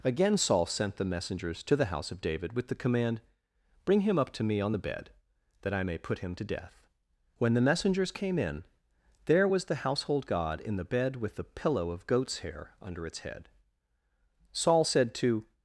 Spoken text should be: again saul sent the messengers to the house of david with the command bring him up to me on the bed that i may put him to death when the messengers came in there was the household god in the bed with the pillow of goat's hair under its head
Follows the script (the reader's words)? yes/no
no